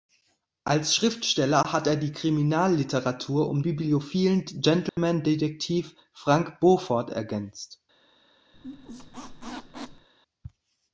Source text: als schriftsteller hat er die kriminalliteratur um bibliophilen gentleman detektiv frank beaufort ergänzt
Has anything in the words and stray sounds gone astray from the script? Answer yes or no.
yes